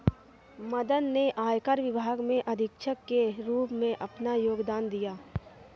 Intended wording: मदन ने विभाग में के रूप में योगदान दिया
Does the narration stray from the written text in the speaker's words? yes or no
yes